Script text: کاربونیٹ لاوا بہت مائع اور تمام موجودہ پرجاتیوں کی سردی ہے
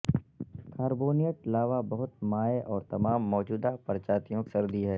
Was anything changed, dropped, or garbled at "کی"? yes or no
yes